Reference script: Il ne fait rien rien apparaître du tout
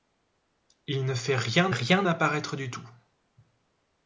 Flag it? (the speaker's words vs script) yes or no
no